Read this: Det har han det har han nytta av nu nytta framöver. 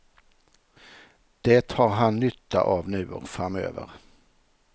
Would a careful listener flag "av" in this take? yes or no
no